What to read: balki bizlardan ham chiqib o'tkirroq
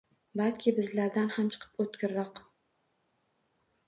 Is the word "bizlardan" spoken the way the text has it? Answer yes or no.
yes